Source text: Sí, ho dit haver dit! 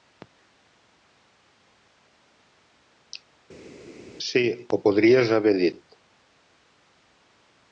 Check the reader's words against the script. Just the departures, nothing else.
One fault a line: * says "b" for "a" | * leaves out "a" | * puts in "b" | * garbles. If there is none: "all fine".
* says "podries" for "dit"